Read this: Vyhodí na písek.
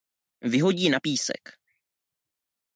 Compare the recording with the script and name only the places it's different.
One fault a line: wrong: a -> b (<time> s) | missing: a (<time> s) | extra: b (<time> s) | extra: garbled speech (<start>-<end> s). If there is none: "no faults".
no faults